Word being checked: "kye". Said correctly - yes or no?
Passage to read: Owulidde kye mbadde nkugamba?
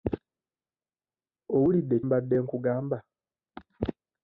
no